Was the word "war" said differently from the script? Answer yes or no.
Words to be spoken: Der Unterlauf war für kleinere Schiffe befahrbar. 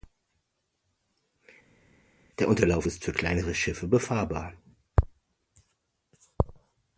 yes